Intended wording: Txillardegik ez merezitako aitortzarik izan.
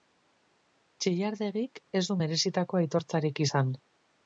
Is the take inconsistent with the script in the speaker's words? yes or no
yes